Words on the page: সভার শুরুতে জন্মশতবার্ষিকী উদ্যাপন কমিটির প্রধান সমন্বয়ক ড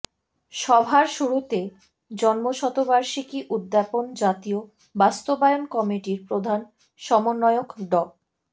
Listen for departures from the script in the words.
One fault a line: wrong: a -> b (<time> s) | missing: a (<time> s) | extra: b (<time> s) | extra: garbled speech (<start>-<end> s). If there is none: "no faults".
extra: জাতীয় বাস্তবায়ন (4.2 s)